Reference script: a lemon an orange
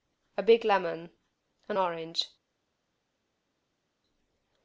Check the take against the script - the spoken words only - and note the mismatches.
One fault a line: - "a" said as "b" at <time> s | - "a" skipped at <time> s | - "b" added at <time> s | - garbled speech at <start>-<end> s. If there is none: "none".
- "big" added at 0.4 s